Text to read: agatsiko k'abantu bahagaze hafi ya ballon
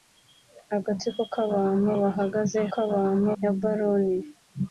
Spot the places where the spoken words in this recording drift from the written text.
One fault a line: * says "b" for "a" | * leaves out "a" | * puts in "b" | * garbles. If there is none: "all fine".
* says "k'abantu" for "hafi"